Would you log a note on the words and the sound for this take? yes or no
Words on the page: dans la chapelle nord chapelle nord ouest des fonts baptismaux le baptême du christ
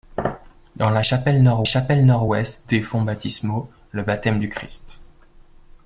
no